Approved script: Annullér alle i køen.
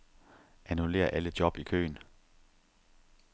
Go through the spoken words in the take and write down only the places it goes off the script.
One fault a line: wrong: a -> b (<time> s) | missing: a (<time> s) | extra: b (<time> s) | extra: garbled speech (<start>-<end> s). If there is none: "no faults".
extra: job (1.4 s)